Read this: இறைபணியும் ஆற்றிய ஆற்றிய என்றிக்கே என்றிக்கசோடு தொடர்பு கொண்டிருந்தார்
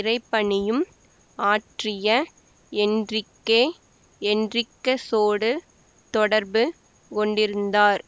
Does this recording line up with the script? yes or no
no